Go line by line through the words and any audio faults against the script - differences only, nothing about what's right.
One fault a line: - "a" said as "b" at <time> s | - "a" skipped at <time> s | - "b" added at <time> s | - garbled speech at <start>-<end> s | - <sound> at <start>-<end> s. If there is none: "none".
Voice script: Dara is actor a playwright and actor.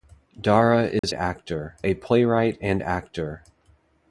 - dropout at 1.0-1.0 s